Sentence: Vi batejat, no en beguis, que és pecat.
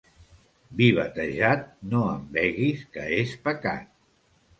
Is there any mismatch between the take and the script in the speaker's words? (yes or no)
no